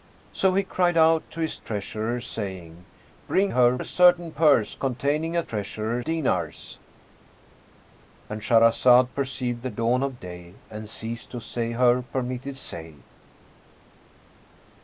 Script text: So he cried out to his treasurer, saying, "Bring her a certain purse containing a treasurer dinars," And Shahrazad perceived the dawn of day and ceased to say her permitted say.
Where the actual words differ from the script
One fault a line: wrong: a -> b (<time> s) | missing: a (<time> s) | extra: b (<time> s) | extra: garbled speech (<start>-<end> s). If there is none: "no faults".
no faults